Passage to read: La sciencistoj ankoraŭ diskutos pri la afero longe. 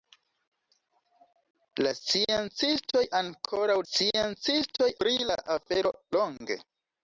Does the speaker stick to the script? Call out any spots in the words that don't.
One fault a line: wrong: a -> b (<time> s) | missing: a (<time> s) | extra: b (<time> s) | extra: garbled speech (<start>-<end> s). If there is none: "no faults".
wrong: diskutos -> sciencistoj (3.8 s)